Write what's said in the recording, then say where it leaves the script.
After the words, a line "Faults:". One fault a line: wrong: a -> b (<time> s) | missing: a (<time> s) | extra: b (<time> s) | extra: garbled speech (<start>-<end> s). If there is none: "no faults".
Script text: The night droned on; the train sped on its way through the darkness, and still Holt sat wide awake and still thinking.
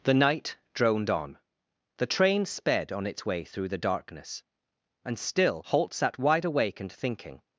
The night droned on; the train sped on its way through the darkness, and still Holt sat wide awake and thinking.
Faults:
missing: still (6.9 s)